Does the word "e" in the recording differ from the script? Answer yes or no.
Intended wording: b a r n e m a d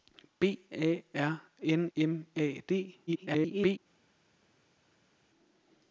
yes